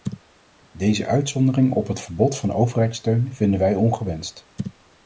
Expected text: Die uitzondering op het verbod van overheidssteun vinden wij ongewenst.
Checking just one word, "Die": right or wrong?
wrong